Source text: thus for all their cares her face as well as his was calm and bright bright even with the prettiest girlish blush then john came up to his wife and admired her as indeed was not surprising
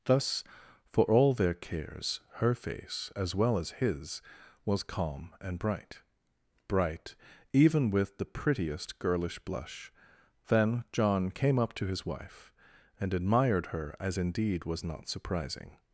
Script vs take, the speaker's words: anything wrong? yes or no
no